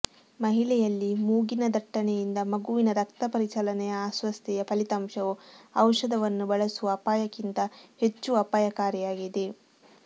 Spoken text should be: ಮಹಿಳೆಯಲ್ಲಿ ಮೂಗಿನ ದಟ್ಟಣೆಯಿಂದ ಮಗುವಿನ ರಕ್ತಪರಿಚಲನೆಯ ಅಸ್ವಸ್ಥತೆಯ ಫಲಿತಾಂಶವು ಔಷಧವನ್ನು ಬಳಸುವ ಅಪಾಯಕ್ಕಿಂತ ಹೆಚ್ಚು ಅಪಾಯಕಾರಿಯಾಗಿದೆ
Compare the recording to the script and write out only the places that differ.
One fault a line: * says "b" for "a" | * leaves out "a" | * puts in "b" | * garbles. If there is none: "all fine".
all fine